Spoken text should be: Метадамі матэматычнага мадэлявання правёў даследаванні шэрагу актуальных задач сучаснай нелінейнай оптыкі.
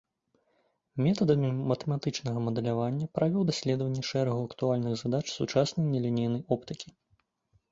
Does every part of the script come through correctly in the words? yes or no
yes